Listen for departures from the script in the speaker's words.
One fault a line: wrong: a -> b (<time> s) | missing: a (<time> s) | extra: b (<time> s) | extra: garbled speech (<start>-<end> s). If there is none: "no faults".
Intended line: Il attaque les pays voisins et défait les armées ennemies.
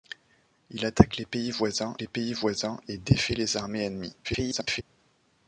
extra: les pays voisins (2.0 s)
extra: garbled speech (4.2-4.8 s)